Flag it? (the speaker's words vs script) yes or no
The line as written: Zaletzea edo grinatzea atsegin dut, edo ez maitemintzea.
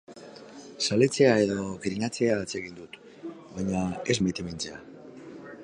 yes